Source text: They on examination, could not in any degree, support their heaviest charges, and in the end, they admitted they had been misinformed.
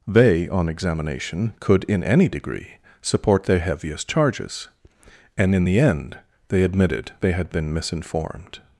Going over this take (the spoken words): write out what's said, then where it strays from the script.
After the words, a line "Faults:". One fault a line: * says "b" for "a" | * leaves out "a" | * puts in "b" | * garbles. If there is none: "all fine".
They on examination, could in any degree, support their heaviest charges, and in the end, they admitted they had been misinformed.
Faults:
* leaves out "not"